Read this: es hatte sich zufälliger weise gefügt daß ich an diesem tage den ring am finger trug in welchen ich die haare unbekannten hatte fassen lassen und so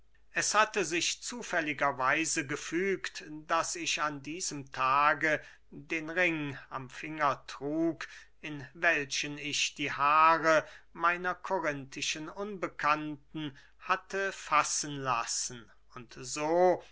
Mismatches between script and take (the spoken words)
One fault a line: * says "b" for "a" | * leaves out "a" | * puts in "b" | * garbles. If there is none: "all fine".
* puts in "meiner korinthischen"